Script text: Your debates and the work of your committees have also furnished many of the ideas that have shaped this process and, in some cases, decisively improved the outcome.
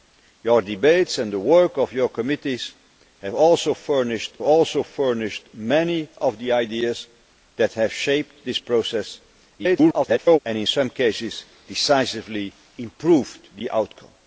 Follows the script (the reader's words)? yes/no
no